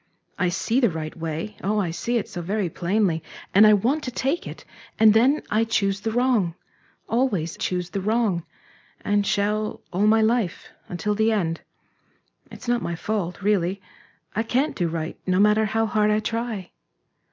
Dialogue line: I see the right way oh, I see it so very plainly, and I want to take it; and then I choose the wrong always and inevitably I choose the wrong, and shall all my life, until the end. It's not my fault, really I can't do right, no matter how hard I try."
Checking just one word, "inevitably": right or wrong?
wrong